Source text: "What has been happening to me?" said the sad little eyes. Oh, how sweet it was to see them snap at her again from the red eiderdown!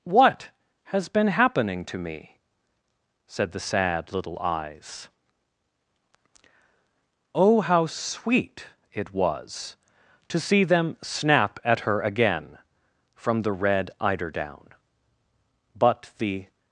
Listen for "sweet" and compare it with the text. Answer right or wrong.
right